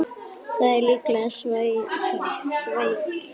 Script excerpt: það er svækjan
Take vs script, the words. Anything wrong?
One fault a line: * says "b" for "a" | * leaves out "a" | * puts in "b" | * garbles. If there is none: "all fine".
* puts in "líklega"